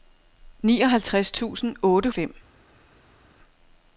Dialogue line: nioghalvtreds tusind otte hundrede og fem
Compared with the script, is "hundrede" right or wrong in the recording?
wrong